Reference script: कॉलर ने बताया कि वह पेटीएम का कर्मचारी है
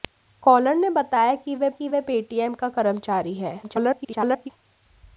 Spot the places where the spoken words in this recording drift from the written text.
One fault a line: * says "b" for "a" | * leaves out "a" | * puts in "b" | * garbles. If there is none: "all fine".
* puts in "कि वह"
* garbles